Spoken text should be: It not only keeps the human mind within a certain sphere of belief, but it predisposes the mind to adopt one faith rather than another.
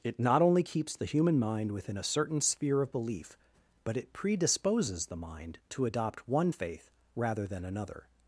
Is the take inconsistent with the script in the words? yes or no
no